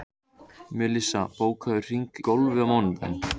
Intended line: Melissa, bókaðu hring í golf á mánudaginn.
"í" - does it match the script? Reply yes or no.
no